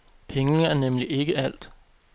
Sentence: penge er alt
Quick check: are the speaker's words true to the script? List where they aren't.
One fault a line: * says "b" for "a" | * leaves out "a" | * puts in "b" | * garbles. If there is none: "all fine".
* puts in "nemlig ikke"